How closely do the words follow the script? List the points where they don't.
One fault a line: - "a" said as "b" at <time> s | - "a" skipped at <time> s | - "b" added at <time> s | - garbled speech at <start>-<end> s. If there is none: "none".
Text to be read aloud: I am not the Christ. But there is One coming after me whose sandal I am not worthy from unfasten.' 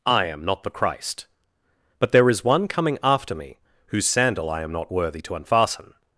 - "from" said as "to" at 5.2 s